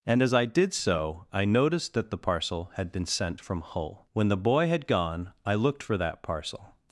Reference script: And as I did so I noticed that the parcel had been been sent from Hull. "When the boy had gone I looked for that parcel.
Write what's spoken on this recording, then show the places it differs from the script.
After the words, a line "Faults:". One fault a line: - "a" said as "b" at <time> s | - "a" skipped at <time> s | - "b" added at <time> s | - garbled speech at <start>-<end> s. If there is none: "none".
And as I did so I noticed that the parcel had been sent from Hull. "When the boy had gone I looked for that parcel.
Faults:
- "been" skipped at 3.1 s